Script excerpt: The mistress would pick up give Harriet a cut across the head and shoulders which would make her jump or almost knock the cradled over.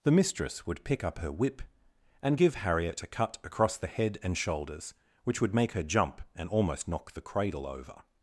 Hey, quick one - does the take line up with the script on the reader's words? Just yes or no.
no